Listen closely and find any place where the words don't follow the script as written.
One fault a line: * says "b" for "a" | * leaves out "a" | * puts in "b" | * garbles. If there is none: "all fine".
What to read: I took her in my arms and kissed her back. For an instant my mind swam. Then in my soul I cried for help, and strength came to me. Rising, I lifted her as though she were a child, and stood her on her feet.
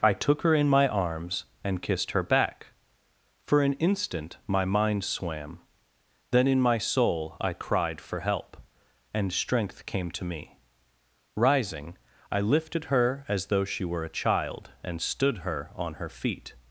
all fine